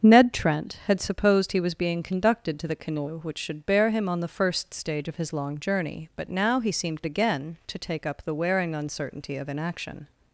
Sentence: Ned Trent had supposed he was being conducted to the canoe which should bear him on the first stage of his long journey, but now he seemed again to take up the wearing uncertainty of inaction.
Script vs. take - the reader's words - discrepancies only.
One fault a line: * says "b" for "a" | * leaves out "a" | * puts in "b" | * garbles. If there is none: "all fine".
all fine